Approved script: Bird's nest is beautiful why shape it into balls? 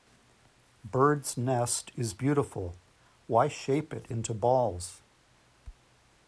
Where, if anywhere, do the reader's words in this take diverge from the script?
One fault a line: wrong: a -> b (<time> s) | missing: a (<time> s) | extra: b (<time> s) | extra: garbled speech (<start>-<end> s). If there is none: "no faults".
no faults